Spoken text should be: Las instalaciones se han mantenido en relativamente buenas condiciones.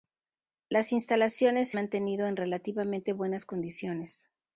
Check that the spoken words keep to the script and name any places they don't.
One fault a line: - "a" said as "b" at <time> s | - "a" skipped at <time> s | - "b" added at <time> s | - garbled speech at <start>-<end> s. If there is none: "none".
- "han" skipped at 1.8 s